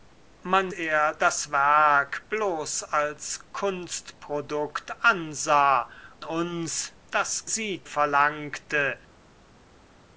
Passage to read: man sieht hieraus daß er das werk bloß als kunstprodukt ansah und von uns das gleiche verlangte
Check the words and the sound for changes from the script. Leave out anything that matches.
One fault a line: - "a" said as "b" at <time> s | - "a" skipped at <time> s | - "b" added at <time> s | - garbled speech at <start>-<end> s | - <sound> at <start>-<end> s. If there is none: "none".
- "sieht hieraus daß" skipped at 0.7 s
- "und von" skipped at 5.9 s
- "gleiche" said as "sieht" at 7.5 s